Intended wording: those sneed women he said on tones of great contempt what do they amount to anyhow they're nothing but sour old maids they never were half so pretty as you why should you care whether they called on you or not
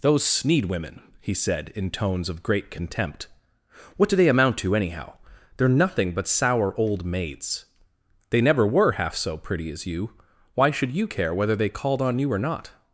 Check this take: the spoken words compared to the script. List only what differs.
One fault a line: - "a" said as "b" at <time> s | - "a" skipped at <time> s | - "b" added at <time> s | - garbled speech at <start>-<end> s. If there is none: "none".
- "on" said as "in" at 1.8 s